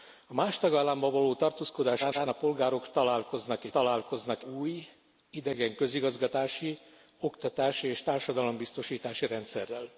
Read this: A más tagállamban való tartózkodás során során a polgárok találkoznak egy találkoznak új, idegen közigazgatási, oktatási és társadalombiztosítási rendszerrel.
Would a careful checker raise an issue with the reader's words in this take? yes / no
no